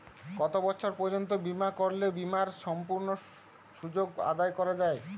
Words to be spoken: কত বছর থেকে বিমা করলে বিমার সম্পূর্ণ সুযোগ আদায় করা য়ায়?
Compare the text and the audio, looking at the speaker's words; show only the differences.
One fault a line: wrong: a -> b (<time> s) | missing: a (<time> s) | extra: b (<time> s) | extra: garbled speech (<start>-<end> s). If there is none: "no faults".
wrong: থেকে -> পর্যন্ত (0.9 s)